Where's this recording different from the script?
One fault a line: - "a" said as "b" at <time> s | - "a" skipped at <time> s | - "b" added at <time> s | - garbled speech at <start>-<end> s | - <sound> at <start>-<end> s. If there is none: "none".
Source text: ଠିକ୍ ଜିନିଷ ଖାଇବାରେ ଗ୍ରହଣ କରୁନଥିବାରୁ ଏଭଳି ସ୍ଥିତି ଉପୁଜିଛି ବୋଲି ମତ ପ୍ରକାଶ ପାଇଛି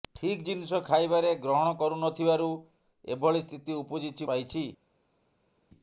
- "ବୋଲି ମତ ପ୍ରକାଶ" skipped at 4.3 s